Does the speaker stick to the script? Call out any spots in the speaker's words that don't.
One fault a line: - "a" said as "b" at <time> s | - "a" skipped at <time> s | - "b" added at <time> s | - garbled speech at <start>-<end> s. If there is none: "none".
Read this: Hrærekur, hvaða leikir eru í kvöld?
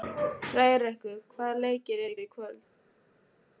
- "eru" added at 2.2 s